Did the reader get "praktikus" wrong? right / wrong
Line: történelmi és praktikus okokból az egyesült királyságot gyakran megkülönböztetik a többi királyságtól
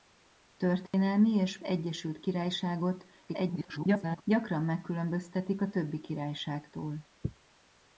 wrong